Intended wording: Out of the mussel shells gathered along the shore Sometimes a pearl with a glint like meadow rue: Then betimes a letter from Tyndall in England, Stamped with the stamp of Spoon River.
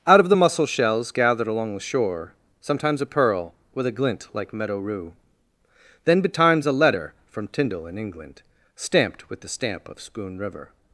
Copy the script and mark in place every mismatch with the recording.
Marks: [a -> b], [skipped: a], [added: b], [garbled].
Out of the mussel shells gathered along the shore Sometimes a pearl with a glint like meadow rue: Then betimes a letter from Tyndall in England, Stamped with the stamp of Spoon River.